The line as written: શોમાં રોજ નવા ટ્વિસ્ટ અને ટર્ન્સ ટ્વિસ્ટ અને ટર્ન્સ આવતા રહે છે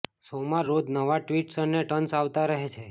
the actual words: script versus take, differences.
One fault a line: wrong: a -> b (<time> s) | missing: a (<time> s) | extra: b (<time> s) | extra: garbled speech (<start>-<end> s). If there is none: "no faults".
missing: ટ્વિસ્ટ અને ટર્ન્સ (2.2 s)